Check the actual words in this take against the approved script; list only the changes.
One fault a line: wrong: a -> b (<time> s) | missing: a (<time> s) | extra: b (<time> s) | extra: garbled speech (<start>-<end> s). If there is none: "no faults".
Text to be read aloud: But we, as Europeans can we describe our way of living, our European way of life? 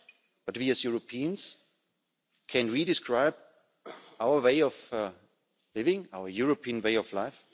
no faults